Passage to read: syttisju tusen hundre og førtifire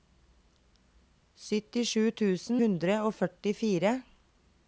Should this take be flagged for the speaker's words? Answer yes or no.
no